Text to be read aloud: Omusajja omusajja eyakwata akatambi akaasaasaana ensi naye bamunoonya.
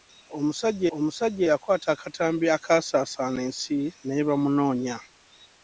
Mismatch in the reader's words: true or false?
false